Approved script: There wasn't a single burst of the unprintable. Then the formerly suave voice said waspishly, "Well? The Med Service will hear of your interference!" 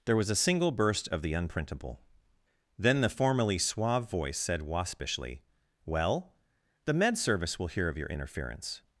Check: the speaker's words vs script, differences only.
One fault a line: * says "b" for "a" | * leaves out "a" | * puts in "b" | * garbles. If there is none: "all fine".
* says "was" for "wasn't"